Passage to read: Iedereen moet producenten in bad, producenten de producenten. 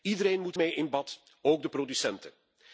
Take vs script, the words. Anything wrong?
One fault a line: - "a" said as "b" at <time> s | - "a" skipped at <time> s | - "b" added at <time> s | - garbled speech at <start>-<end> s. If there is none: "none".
- "producenten" said as "mee" at 0.5 s
- "producenten" said as "ook" at 1.4 s